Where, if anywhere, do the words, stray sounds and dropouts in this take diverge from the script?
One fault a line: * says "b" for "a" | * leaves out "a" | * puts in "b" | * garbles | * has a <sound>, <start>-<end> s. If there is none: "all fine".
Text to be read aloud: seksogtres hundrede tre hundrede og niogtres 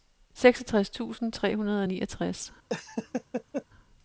* says "tusind" for "hundrede"
* has a laugh, 2.7-3.6 s